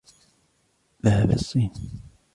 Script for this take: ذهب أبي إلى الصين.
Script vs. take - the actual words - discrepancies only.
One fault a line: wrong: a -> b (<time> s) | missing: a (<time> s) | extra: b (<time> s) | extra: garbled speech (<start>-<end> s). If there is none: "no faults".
missing: أبي (1.3 s)